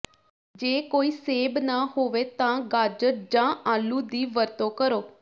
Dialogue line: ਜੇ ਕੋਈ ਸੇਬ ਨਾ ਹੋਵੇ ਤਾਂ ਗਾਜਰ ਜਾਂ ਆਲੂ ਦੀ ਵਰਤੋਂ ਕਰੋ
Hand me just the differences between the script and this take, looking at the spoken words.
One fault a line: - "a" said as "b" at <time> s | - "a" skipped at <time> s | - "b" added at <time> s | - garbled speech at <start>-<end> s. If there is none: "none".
none